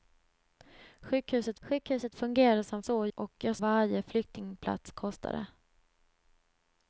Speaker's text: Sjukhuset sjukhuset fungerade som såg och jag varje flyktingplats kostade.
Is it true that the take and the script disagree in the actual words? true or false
false